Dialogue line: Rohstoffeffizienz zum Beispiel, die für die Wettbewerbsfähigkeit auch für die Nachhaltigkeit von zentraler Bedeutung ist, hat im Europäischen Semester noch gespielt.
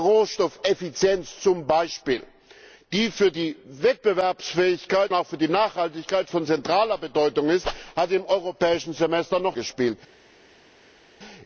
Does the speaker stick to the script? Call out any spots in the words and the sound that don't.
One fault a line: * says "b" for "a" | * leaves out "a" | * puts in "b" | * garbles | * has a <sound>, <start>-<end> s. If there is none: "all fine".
all fine